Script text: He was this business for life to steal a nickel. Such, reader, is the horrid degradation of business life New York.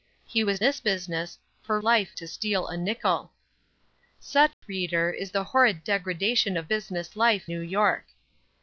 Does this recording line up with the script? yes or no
yes